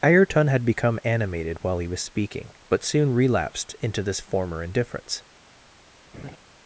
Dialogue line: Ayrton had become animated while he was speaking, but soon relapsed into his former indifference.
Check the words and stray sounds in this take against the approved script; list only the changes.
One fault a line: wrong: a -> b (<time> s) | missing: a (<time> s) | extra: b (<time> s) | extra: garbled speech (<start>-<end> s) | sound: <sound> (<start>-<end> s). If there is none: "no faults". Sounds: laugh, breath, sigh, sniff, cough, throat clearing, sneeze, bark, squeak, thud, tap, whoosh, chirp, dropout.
wrong: his -> this (4.0 s)
sound: laugh (6.1-6.4 s)